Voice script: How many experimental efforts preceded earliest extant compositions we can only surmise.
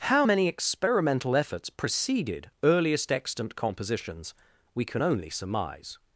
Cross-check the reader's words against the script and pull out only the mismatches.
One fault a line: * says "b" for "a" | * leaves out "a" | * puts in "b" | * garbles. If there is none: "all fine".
all fine